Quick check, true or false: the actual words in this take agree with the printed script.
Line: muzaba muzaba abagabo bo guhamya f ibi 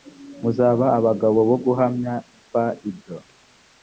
false